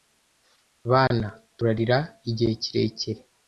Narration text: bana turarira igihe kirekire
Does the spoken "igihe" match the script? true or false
true